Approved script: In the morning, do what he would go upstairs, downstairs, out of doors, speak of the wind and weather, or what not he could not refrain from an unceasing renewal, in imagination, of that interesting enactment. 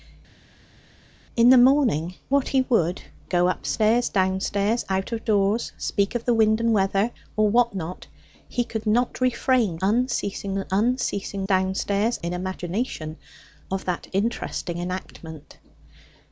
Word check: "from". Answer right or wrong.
wrong